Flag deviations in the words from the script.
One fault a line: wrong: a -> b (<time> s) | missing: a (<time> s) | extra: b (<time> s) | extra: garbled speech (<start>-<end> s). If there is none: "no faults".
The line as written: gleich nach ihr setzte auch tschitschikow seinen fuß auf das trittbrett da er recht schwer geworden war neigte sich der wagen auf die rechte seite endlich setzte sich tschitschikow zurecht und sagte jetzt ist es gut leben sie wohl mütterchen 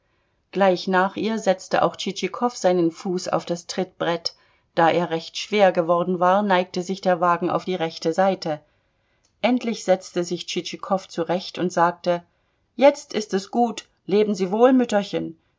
no faults